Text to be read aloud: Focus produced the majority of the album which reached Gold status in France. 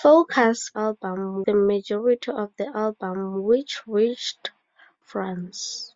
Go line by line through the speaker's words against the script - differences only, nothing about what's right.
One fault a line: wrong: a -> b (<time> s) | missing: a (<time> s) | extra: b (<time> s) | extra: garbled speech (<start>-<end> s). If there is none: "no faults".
wrong: produced -> album (0.8 s)
missing: Gold status in (4.5 s)